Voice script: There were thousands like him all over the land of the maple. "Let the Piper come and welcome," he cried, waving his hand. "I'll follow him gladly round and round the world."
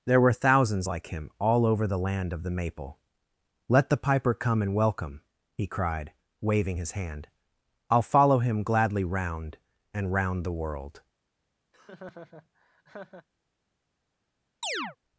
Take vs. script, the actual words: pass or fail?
pass